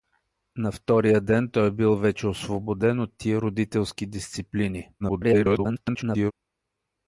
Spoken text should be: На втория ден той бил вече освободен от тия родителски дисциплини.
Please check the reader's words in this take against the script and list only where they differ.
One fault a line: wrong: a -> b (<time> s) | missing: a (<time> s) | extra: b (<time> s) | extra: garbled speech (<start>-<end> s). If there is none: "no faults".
extra: garbled speech (5.0-6.3 s)